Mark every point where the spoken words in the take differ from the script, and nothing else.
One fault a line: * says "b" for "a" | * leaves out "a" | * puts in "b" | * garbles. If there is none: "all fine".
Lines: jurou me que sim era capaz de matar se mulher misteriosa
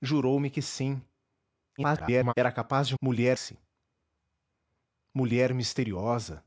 * garbles
* says "mulher" for "matar"